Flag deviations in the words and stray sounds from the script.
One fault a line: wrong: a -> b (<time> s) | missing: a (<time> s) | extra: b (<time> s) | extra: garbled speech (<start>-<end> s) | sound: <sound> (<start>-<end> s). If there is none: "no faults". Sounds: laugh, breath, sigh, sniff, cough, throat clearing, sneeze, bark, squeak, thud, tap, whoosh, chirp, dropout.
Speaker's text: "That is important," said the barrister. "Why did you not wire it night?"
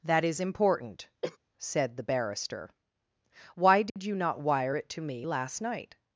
sound: cough (1.2-1.4 s)
sound: dropout (3.9-4.0 s)
extra: to me last (4.9 s)